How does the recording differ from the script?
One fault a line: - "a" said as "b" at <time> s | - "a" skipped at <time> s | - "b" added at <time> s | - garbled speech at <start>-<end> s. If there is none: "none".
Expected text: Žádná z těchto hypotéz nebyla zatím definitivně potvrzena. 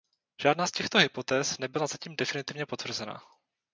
none